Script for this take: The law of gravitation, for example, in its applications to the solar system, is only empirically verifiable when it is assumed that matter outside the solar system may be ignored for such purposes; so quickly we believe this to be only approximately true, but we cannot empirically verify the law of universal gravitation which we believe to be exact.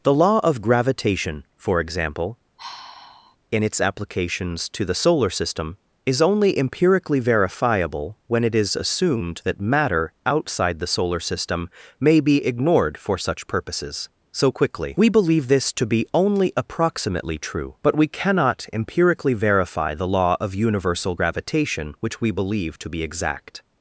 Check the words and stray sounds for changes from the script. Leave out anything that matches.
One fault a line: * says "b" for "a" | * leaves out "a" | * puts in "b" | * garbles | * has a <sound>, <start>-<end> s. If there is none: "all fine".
* has a sigh, 2.6-3.4 s